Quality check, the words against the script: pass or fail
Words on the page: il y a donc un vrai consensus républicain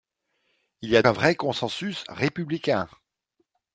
fail